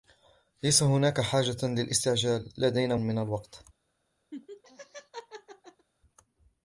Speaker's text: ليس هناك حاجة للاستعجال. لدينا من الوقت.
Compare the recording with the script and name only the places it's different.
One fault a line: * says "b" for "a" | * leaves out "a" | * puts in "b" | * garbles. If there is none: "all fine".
all fine